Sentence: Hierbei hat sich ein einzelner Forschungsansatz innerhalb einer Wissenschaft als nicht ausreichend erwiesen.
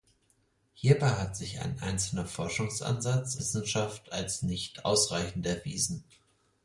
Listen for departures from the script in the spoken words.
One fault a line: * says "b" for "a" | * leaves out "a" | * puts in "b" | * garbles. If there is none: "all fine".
* leaves out "innerhalb einer"